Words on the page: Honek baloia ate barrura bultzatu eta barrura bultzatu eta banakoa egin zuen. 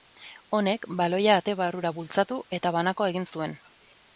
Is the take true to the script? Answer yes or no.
no